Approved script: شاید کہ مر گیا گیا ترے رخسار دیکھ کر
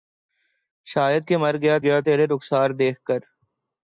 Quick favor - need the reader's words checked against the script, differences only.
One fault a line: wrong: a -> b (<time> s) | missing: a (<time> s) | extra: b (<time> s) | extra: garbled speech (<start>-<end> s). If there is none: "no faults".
no faults